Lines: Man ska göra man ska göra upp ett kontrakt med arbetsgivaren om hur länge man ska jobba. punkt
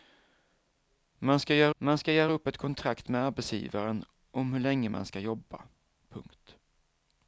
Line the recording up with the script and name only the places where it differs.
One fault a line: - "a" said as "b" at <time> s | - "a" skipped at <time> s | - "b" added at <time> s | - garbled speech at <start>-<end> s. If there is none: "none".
none